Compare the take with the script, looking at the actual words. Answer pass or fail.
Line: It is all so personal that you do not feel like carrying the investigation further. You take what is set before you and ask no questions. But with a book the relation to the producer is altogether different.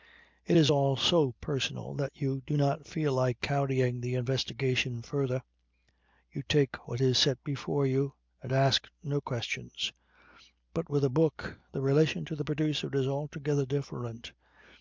pass